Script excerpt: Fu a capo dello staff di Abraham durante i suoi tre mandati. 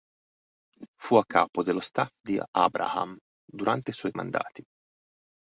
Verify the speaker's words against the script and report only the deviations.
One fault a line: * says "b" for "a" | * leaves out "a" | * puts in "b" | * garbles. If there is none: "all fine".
* leaves out "tre"